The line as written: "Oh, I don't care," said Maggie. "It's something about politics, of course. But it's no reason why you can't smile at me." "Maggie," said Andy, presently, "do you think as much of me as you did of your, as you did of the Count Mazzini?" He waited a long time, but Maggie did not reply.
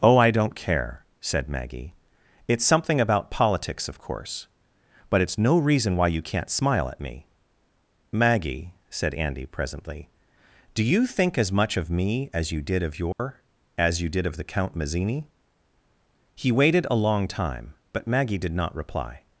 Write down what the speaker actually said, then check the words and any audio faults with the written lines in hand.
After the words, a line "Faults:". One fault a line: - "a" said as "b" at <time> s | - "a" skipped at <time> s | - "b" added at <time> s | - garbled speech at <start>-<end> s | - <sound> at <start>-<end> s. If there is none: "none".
"Oh, I don't care," said Maggie. "It's something about politics, of course. But it's no reason why you can't smile at me." "Maggie," said Andy, presently, "do you think as much of me as you did of your, as you did of the Count Mazzini?" He waited a long time, but Maggie did not reply.
Faults:
- dropout at 13.1-13.2 s